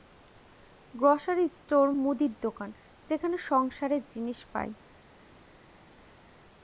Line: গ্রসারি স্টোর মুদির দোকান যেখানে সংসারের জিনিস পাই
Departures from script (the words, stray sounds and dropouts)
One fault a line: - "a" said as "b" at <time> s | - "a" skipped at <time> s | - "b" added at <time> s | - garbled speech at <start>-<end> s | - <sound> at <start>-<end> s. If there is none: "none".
none